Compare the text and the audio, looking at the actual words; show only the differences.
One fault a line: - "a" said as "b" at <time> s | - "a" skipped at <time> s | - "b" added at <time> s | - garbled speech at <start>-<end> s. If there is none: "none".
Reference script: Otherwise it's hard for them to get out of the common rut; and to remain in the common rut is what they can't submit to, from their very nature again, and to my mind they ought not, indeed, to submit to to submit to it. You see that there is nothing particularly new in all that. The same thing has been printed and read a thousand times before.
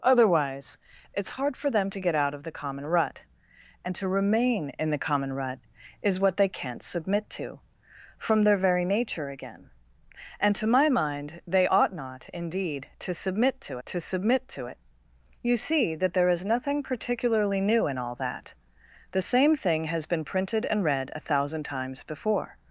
none